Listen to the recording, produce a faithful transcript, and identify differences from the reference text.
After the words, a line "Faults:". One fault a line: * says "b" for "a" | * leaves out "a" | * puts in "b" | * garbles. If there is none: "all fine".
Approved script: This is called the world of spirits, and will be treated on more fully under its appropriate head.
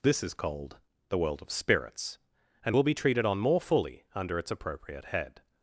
This is called the world of spirits, and will be treated on more fully under its appropriate head.
Faults:
all fine